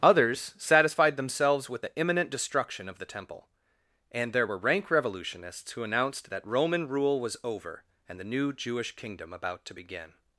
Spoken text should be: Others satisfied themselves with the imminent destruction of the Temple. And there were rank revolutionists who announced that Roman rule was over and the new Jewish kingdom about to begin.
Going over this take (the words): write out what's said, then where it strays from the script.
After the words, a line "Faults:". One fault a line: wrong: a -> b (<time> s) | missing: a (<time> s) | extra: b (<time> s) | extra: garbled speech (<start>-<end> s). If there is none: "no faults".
Others satisfied themselves with the imminent destruction of the Temple. And there were rank revolutionists who announced that Roman rule was over and the new Jewish kingdom about to begin.
Faults:
no faults